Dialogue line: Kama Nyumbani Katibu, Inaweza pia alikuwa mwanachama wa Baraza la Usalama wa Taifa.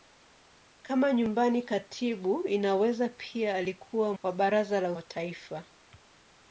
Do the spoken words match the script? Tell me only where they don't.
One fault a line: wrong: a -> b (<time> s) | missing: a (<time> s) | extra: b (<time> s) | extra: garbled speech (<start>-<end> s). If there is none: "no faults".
missing: mwanachama (4.1 s)
missing: Usalama (4.9 s)